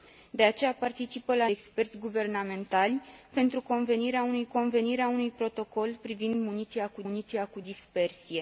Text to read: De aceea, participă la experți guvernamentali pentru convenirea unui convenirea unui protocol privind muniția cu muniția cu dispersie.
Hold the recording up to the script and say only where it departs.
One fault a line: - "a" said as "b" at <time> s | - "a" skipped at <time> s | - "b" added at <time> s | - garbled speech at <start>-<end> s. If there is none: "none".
none